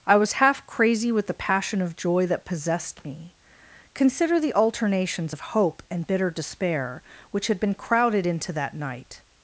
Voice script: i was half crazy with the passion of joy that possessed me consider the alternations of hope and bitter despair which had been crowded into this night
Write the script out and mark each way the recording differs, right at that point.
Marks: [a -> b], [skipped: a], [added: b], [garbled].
i was half crazy with the passion of joy that possessed me consider the alternations of hope and bitter despair which had been crowded into [this -> that] night